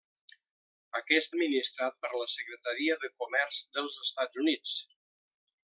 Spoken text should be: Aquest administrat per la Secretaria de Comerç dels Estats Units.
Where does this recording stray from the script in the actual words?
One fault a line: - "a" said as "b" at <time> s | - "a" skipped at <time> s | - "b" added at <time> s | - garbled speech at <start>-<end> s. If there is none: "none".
none